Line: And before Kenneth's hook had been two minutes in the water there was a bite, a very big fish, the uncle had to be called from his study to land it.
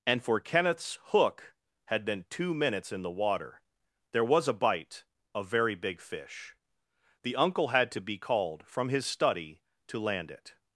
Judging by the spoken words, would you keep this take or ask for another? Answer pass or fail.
fail